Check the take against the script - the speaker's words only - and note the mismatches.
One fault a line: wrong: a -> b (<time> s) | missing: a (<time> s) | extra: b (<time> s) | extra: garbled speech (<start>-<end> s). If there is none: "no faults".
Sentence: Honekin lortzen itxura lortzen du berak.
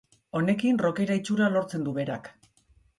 wrong: lortzen -> rockera (0.8 s)